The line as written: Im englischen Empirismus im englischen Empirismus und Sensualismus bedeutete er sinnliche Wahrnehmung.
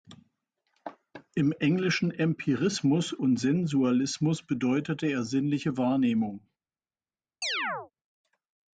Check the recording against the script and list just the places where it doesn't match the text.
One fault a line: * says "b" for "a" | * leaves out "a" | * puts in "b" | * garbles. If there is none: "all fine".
* leaves out "im englischen Empirismus"